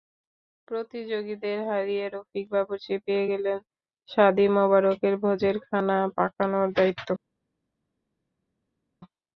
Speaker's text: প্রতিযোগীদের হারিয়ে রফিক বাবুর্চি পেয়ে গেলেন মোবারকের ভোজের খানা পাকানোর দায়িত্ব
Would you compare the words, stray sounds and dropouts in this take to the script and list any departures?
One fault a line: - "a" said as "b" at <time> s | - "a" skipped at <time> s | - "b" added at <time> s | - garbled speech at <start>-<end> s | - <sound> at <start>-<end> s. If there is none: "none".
- "শাদি" added at 4.1 s